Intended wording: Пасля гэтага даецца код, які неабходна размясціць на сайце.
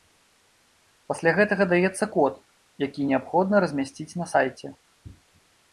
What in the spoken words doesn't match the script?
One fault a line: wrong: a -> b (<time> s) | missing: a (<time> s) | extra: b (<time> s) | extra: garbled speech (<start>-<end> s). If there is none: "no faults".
no faults